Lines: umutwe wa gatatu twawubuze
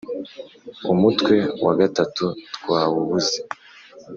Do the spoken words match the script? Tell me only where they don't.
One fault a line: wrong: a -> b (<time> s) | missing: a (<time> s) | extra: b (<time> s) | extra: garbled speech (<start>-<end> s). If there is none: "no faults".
no faults